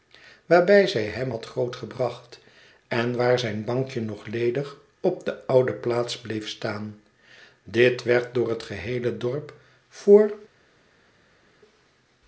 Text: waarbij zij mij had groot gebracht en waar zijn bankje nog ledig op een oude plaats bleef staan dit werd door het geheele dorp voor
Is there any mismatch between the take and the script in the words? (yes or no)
yes